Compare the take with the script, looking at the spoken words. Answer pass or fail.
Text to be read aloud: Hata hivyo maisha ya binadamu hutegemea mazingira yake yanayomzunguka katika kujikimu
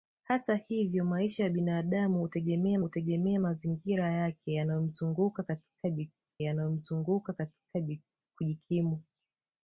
fail